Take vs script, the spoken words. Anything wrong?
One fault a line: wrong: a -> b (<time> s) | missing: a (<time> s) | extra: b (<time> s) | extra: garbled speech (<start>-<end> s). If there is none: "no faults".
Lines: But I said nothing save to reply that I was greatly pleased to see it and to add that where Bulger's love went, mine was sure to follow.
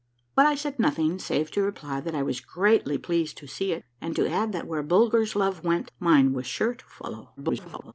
extra: garbled speech (7.4-7.9 s)